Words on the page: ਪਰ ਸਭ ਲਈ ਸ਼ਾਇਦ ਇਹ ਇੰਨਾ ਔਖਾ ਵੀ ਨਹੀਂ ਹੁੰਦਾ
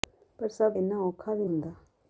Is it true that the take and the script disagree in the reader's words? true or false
true